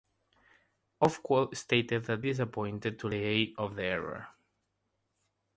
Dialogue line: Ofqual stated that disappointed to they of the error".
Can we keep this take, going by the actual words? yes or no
yes